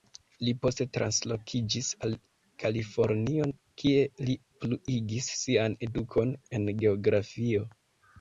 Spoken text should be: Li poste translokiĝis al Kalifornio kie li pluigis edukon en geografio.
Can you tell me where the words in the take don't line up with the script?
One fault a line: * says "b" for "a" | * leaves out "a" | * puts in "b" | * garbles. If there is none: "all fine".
* puts in "sian"